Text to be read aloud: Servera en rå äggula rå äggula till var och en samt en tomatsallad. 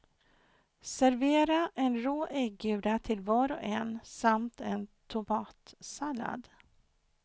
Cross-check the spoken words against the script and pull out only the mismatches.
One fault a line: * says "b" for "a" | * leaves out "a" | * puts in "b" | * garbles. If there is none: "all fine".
* leaves out "rå äggula"